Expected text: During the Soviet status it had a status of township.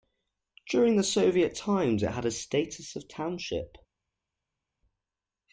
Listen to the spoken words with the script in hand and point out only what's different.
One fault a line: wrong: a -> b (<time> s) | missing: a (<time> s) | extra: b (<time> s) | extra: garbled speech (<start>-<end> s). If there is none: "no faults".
wrong: status -> times (1.6 s)